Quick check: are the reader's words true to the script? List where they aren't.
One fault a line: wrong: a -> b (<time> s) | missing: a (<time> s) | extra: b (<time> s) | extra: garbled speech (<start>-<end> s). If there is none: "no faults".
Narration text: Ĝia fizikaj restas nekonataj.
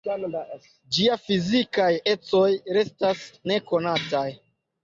extra: ecoj (2.1 s)